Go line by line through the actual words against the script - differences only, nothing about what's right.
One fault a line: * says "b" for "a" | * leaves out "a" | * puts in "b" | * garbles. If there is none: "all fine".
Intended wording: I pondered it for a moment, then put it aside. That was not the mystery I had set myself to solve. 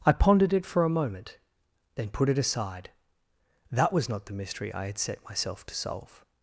all fine